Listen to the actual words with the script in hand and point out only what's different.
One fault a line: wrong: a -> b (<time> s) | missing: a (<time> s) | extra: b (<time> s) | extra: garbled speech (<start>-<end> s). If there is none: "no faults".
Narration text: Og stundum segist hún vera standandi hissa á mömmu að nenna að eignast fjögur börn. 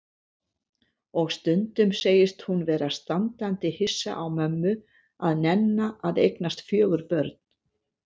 no faults